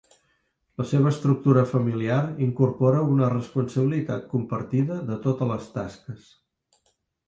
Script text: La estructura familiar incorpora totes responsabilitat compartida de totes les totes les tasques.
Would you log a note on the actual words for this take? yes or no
yes